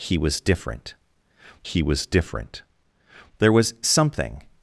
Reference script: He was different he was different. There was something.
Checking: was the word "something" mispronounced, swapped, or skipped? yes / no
no